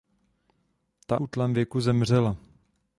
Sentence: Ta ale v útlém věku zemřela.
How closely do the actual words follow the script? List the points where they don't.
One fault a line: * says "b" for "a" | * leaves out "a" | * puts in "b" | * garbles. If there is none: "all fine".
* leaves out "ale v"